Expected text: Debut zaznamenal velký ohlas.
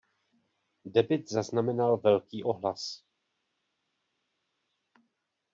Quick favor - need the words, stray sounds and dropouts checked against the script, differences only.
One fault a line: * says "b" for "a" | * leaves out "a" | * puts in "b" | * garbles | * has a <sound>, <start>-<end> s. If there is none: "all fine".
all fine